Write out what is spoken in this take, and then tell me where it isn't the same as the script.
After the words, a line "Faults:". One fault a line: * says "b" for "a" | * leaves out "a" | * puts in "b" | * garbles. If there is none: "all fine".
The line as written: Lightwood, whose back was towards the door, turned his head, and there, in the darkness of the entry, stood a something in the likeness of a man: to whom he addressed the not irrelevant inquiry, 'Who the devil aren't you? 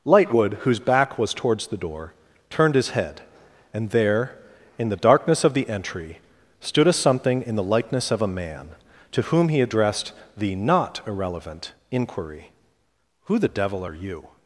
Lightwood, whose back was towards the door, turned his head, and there, in the darkness of the entry, stood a something in the likeness of a man: to whom he addressed the not irrelevant inquiry, 'Who the devil are you?
Faults:
* says "are" for "aren't"